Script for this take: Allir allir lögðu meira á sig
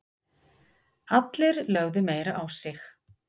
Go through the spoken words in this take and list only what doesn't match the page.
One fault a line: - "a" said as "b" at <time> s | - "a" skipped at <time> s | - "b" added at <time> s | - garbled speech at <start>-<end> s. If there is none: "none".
- "allir" skipped at 1.6 s